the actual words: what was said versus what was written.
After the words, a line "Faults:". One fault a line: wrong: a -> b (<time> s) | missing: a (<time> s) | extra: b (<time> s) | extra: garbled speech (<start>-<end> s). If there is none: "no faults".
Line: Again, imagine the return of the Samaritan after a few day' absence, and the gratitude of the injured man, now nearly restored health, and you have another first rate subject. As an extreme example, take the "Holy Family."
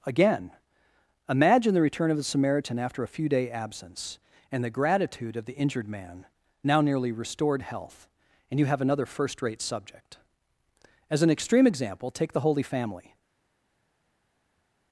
Again, imagine the return of the Samaritan after a few day' absence, and the gratitude of the injured man, now nearly restored health, and you have another first rate subject. As an extreme example, take the "Holy Family."
Faults:
no faults